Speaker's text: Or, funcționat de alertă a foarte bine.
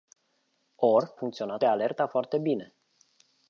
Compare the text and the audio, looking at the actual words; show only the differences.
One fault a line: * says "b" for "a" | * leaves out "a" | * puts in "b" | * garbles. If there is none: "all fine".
all fine